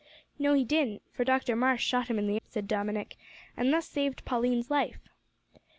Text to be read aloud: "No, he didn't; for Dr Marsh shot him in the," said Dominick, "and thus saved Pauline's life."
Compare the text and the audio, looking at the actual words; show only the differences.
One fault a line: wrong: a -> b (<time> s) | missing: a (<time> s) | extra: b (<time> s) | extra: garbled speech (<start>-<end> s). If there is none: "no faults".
no faults